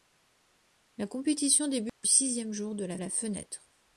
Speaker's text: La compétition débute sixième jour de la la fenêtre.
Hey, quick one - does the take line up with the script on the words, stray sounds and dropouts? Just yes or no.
no